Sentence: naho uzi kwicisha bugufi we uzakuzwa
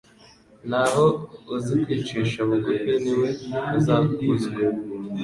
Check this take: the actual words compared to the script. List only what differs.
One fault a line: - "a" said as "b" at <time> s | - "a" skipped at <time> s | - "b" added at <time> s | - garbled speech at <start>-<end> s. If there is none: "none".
- "ni" added at 3.0 s